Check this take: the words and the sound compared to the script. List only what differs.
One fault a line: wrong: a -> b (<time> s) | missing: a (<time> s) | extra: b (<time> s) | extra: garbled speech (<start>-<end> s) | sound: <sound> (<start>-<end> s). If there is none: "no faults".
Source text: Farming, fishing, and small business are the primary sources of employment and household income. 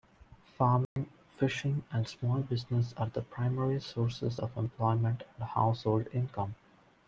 sound: dropout (0.8-1.0 s)